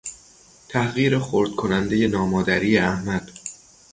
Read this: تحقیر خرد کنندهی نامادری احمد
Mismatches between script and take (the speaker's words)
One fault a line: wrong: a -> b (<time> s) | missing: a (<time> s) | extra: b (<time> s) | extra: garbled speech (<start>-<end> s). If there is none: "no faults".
no faults